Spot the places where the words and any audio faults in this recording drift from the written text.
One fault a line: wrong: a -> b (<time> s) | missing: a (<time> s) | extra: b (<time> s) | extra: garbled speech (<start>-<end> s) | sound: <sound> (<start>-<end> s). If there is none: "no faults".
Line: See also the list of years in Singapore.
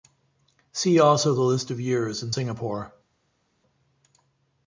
no faults